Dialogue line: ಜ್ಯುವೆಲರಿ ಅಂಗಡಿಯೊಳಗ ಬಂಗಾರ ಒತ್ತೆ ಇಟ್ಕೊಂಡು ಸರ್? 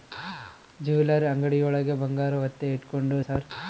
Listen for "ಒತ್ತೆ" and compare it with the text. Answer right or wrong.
right